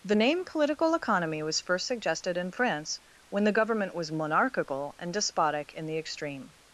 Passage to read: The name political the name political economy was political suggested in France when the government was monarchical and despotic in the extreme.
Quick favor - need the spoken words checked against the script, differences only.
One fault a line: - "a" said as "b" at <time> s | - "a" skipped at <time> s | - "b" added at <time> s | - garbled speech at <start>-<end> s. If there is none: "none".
- "the name political" skipped at 0.9 s
- "political" said as "first" at 1.6 s